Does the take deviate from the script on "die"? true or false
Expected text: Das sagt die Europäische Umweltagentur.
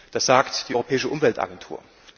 false